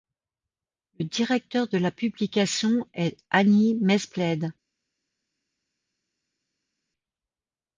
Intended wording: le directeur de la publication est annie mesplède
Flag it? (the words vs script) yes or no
no